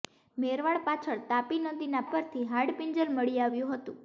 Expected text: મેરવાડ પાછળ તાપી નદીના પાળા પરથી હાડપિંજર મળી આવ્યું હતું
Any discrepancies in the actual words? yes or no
yes